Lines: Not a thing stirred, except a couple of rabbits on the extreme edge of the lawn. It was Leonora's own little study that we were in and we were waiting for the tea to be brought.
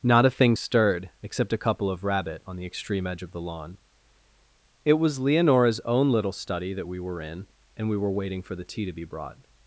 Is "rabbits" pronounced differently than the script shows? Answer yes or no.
yes